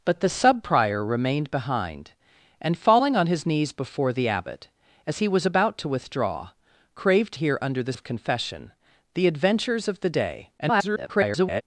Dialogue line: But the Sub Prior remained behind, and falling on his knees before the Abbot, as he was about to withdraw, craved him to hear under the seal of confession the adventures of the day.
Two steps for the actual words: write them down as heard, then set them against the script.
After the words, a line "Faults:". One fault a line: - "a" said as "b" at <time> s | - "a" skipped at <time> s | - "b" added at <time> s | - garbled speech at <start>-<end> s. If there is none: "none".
But the Sub Prior remained behind, and falling on his knees before the Abbot, as he was about to withdraw, craved hear under the of confession the adventures of the day. [garbled]
Faults:
- "him to" skipped at 7.3 s
- "seal" skipped at 7.9 s
- garbled speech at 10.6-11.6 s